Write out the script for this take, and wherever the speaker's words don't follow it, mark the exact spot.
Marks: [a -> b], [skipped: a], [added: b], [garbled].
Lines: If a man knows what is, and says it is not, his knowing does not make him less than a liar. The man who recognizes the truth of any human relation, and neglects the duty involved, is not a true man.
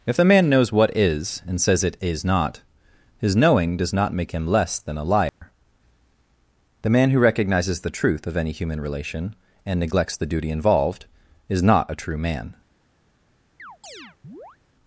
If [a -> the] man knows what is, and says it is not, his knowing does not make him less than a liar. The man who recognizes the truth of any human relation, and neglects the duty involved, is not a true man.